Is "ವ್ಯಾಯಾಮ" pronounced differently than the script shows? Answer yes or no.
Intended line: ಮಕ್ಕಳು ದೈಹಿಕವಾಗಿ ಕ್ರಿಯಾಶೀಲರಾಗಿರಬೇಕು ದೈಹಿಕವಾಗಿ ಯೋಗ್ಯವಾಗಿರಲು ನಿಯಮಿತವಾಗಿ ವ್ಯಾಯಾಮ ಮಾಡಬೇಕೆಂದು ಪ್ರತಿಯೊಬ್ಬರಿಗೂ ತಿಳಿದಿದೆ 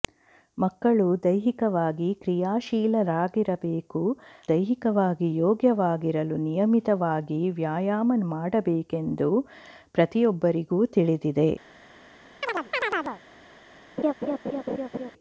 no